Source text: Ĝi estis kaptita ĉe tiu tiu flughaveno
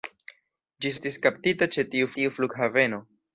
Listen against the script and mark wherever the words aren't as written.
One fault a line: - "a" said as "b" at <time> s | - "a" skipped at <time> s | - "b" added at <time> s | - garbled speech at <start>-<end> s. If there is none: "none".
none